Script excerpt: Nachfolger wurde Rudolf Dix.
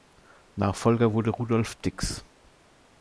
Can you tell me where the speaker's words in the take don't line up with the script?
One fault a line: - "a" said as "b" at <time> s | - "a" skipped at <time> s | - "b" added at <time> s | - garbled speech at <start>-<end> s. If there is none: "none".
none